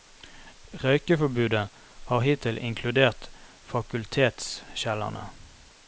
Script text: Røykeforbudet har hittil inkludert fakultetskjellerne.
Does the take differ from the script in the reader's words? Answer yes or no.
no